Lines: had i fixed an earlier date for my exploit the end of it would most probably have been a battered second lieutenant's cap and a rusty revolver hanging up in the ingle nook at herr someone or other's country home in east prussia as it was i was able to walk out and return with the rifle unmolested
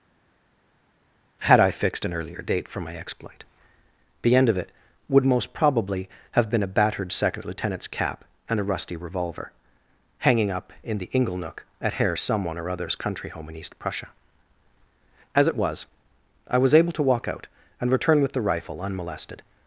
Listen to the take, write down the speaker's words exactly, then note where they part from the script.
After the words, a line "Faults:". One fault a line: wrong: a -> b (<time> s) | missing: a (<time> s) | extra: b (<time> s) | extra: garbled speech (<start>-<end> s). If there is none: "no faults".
had i fixed an earlier date for my exploit the end of it would most probably have been a battered second lieutenant's cap and a rusty revolver hanging up in the ingle nook at herr someone or other's country home in east prussia as it was i was able to walk out and return with the rifle unmolested
Faults:
no faults